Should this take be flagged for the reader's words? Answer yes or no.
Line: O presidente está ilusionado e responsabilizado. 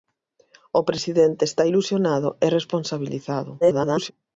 yes